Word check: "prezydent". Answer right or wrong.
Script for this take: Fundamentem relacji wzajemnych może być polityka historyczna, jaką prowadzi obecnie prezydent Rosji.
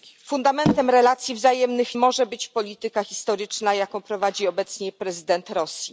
right